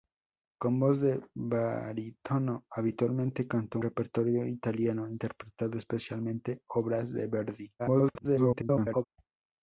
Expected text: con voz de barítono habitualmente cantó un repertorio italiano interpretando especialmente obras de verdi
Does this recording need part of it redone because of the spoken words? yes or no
yes